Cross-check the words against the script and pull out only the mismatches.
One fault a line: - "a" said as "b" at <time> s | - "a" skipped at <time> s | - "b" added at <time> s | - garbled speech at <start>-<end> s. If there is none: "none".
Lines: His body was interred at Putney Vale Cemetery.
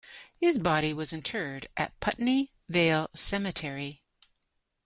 none